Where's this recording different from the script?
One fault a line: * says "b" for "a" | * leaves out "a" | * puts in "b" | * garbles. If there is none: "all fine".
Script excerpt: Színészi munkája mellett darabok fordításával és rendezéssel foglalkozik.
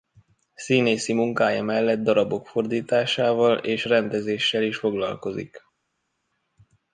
* puts in "is"